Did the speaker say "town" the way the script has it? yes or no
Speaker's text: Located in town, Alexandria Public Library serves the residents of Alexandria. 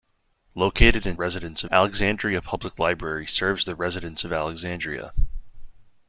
no